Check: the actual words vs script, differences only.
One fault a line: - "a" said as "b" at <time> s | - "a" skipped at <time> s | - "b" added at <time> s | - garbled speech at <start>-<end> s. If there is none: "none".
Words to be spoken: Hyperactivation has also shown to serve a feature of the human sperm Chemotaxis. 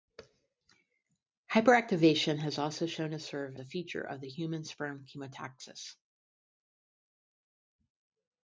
none